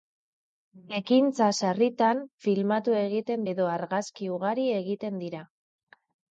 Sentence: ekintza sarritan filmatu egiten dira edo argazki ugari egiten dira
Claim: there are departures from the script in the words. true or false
true